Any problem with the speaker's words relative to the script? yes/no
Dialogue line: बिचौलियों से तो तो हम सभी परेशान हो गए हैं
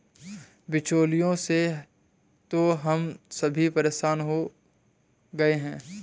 yes